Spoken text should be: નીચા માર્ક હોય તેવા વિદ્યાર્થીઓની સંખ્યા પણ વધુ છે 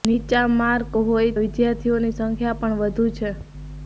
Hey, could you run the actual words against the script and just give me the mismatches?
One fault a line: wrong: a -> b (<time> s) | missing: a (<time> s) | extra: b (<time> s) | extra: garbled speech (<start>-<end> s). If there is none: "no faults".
missing: તેવા (1.3 s)